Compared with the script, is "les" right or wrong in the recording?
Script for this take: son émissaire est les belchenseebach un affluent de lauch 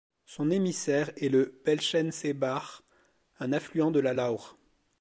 wrong